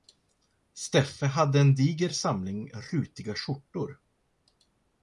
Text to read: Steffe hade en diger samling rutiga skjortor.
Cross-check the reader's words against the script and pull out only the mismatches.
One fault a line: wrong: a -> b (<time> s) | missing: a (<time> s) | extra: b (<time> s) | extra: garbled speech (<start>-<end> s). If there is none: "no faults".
no faults